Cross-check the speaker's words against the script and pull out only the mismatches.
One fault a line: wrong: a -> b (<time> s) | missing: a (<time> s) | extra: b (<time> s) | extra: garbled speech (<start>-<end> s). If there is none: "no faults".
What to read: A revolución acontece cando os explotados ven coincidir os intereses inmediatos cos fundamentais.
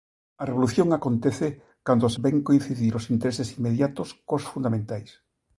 missing: explotados (2.1 s)